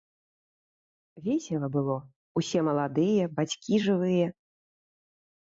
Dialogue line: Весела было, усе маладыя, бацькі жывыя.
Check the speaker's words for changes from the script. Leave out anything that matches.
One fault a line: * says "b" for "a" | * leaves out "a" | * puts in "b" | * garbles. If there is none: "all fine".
all fine